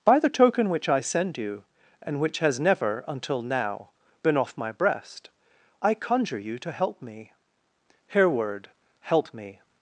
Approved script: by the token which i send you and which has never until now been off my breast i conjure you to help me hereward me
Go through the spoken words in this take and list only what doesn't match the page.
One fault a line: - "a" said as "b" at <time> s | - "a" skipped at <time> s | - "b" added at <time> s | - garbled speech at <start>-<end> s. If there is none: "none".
- "help" added at 9.0 s